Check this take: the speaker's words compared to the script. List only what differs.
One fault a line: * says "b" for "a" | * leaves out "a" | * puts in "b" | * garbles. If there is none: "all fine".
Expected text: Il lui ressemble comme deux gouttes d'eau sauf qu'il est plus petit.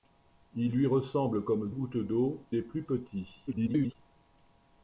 * leaves out "deux"
* leaves out "sauf qu'il"
* garbles